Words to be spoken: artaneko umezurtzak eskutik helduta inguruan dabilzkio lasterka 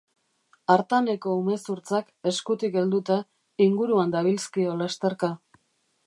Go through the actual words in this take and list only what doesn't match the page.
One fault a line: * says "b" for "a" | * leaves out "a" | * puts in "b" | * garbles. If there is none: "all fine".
all fine